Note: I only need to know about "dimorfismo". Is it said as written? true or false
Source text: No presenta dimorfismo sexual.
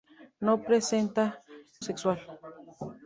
false